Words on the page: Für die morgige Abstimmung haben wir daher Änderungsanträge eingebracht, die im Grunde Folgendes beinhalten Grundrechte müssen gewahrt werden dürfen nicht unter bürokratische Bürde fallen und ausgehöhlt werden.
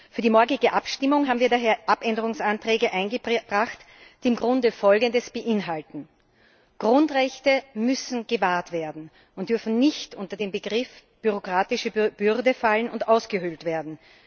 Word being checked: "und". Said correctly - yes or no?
yes